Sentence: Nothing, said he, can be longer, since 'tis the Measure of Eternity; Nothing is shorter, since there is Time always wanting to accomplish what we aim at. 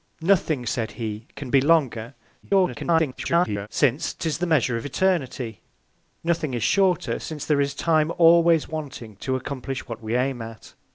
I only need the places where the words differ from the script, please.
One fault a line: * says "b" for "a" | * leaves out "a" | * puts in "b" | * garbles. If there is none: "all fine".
* garbles